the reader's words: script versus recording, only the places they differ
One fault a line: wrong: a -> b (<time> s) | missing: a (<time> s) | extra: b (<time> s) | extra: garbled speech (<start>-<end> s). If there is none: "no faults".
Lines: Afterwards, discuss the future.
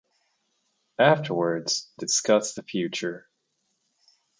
no faults